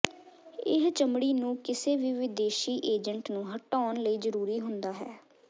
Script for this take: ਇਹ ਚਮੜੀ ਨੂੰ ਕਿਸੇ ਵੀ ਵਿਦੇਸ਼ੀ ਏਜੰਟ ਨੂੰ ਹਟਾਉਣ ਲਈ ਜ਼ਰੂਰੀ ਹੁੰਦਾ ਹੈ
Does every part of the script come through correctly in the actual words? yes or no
yes